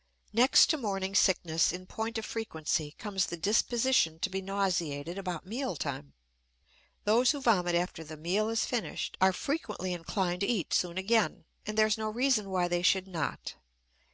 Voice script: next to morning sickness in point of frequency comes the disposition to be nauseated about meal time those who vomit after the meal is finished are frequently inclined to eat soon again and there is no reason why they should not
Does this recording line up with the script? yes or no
yes